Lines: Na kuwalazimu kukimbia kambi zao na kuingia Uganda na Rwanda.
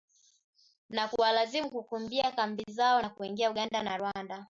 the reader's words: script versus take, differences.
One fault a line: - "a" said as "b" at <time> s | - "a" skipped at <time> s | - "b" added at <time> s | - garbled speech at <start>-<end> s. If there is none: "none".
none